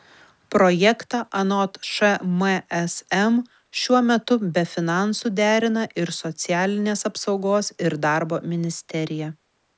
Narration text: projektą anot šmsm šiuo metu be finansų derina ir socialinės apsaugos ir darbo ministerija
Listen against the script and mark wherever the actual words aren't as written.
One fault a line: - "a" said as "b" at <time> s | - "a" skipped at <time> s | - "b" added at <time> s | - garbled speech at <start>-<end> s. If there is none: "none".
none